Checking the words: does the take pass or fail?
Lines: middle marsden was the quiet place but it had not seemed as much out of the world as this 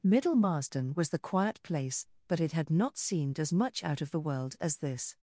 pass